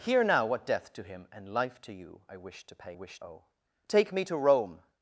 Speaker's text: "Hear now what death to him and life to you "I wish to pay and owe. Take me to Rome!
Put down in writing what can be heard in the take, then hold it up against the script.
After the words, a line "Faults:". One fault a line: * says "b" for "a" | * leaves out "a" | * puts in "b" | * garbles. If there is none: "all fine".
"Hear now what death to him and life to you "I wish to pay wish owe. Take me to Rome!
Faults:
* says "wish" for "and"